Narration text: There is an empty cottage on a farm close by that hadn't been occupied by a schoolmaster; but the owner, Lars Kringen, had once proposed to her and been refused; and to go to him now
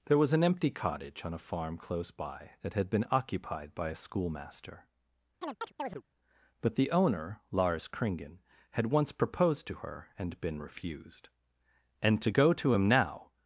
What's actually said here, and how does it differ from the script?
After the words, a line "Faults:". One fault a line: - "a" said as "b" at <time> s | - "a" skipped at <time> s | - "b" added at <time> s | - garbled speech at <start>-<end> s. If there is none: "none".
There was an empty cottage on a farm close by that had been occupied by a schoolmaster; but the owner, Lars Kringen, had once proposed to her and been refused; and to go to him now
Faults:
- "is" said as "was" at 0.2 s
- "hadn't" said as "had" at 2.7 s